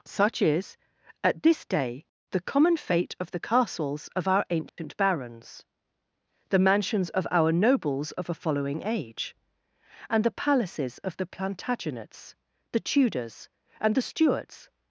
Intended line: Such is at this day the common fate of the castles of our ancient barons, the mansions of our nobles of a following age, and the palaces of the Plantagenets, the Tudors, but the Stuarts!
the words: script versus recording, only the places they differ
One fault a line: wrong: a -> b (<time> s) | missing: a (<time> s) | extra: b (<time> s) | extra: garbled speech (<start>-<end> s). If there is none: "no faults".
wrong: but -> and (13.8 s)